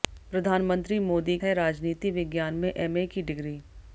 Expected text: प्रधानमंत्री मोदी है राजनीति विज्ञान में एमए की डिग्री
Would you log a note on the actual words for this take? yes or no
no